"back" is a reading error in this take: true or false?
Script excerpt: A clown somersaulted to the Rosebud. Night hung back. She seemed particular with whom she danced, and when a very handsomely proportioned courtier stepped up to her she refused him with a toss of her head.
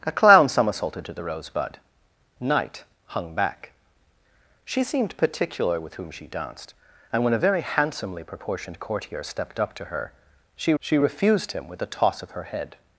false